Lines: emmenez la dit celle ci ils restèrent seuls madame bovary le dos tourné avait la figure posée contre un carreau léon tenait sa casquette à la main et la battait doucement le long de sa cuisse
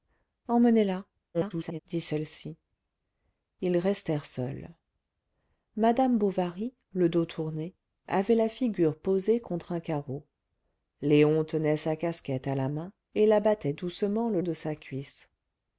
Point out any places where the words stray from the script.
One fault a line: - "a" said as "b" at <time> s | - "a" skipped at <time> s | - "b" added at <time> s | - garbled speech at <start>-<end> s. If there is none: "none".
- garbled speech at 1.3-1.8 s
- "long" skipped at 14.4 s